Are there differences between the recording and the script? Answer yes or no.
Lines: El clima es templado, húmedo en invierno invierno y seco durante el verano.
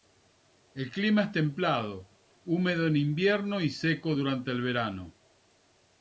yes